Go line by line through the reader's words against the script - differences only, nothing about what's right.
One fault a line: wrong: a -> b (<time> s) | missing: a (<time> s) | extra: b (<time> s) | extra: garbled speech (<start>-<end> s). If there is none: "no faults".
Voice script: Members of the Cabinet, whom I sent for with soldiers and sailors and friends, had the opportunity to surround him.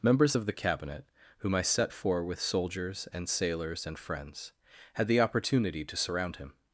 wrong: sent -> set (1.6 s)